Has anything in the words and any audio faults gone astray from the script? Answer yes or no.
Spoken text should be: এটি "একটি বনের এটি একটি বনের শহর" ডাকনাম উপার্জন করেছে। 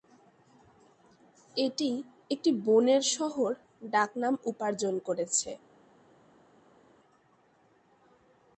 yes